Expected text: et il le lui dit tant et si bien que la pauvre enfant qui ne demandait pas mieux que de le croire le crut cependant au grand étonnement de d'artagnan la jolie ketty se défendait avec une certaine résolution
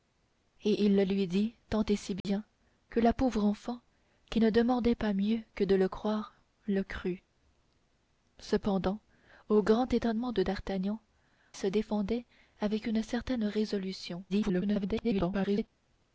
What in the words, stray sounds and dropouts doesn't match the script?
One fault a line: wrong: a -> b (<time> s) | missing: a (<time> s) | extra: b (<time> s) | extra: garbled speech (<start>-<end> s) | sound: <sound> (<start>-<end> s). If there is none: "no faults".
sound: dropout (2.2-2.2 s)
missing: la jolie ketty (11.0 s)
extra: garbled speech (14.3-15.7 s)